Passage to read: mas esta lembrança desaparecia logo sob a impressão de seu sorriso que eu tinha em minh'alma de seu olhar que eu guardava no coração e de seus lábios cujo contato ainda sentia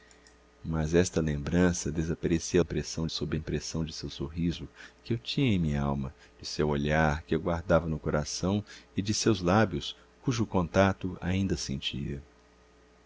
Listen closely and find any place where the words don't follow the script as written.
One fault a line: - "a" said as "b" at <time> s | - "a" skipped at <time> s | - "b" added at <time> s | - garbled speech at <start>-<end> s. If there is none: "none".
- "logo" said as "impressão" at 2.6 s